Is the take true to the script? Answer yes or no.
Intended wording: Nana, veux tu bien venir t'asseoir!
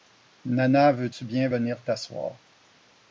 yes